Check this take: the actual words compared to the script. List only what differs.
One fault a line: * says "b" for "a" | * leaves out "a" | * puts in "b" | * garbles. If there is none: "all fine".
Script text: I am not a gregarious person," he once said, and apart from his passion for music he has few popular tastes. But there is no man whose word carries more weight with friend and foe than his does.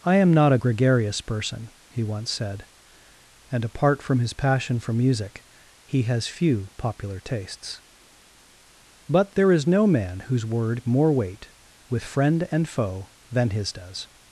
* leaves out "carries"